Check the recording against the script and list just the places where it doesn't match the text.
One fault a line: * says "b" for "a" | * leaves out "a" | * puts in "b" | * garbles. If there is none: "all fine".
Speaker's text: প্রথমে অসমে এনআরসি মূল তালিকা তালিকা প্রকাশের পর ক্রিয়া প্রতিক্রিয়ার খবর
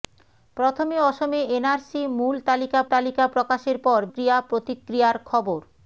all fine